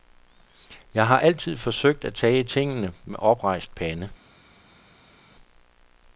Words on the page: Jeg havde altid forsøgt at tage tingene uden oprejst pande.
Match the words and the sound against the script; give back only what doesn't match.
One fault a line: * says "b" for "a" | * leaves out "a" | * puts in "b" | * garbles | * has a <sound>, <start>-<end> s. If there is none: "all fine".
* says "har" for "havde"
* says "med" for "uden"